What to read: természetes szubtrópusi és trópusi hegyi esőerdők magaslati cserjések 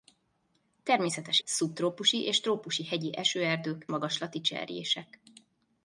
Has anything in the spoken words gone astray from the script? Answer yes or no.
no